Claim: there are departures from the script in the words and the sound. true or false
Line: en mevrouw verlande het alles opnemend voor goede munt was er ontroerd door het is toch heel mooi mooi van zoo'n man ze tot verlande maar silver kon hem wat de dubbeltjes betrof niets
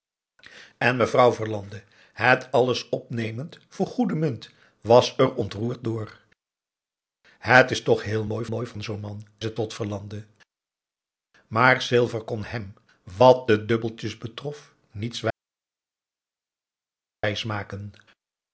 false